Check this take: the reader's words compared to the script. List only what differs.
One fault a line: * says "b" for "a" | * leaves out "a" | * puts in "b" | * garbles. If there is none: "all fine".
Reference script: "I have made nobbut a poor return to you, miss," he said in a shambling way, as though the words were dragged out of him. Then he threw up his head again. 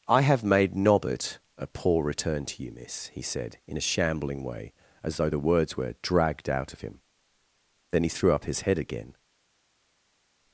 all fine